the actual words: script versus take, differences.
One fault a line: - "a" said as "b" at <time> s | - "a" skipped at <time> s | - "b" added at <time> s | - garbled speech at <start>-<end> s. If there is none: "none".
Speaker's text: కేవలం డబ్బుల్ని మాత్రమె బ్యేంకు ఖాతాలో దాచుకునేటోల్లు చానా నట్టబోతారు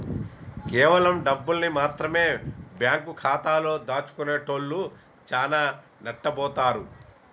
none